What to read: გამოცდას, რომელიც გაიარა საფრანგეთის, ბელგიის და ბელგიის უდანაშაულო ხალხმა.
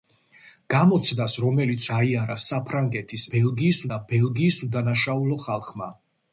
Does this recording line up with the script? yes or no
yes